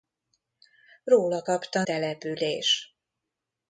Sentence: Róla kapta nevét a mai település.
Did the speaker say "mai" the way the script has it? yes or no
no